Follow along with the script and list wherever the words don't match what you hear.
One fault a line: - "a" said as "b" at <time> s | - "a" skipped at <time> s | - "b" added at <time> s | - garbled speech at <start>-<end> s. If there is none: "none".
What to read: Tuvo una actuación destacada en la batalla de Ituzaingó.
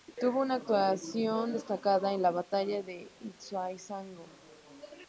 none